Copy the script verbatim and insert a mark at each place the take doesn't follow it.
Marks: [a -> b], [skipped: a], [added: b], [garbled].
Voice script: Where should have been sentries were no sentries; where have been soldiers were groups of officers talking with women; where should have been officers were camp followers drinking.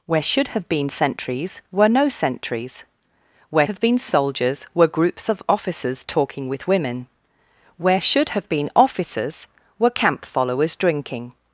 Where should have been sentries were no sentries; where have been soldiers were groups of officers talking with women; where should have been officers were camp followers drinking.